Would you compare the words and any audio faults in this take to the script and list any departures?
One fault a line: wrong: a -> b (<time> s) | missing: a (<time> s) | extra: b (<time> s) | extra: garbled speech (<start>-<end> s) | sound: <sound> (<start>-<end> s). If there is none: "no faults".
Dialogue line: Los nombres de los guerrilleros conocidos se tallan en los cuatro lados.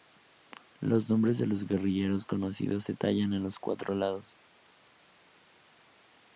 no faults